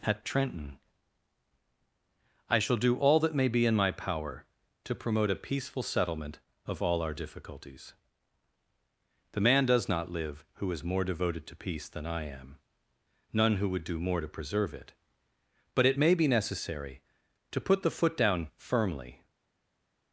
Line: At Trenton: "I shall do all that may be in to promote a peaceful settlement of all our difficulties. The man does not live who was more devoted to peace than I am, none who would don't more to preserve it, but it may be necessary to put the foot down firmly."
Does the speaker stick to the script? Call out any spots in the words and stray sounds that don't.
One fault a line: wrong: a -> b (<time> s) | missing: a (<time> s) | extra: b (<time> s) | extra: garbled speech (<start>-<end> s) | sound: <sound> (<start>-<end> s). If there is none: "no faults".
extra: my power (3.8 s)
wrong: was -> is (10.7 s)
wrong: don't -> do (13.8 s)